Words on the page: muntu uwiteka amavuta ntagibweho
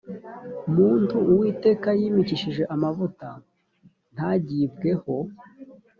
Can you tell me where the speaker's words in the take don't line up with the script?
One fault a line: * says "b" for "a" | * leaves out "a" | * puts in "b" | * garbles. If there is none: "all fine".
* puts in "yimikishije"